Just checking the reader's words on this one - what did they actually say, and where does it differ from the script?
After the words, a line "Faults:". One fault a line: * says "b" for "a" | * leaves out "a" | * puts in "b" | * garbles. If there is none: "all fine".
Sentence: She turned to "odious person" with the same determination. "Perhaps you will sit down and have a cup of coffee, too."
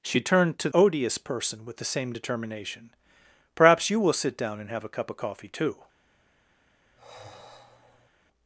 She turned to "odious person" with the same determination. "Perhaps you will sit down and have a cup of coffee, too."
Faults:
all fine